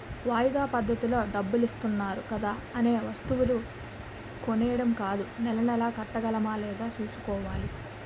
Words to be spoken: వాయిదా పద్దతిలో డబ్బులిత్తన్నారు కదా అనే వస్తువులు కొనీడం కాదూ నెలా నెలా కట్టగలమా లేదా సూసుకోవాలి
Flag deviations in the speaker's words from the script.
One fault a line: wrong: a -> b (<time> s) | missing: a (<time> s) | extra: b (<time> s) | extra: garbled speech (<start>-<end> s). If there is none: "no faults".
no faults